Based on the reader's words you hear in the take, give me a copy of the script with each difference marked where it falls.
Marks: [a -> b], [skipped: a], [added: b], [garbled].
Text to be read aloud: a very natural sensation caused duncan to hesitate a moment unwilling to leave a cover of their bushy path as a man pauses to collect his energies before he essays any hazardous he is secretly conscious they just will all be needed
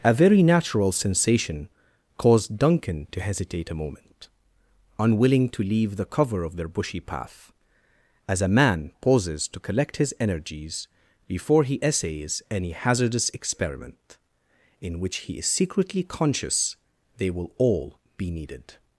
a very natural sensation caused duncan to hesitate a moment unwilling to leave [a -> the] cover of their bushy path as a man pauses to collect his energies before he essays any hazardous [added: experiment in which] he is secretly conscious they [skipped: just] will all be needed